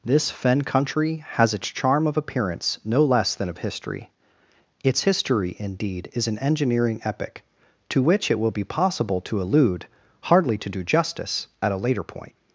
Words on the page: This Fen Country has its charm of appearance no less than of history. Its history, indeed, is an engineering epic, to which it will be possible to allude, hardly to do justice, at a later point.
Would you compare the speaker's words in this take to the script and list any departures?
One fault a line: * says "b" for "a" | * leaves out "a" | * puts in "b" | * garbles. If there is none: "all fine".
all fine